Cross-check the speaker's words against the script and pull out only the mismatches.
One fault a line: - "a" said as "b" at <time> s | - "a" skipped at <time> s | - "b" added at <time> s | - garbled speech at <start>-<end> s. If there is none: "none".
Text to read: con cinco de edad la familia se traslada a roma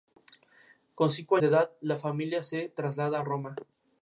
none